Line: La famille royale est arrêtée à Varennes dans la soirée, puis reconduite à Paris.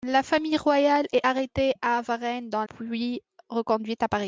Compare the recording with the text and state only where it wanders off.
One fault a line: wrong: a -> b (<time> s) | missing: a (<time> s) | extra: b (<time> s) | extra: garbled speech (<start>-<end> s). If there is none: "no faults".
missing: la soirée (2.6 s)